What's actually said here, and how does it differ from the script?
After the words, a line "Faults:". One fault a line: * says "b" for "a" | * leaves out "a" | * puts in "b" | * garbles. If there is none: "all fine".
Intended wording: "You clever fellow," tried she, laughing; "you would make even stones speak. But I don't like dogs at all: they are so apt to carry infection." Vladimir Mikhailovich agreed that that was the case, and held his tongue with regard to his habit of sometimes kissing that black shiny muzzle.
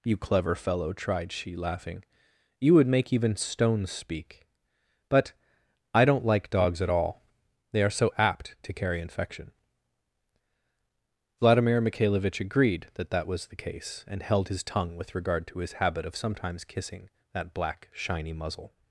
"You clever fellow," tried she, laughing; "you would make even stones speak. But I don't like dogs at all: they are so apt to carry infection." Vladimir Mikhailovich agreed that that was the case, and held his tongue with regard to his habit of sometimes kissing that black shiny muzzle.
Faults:
all fine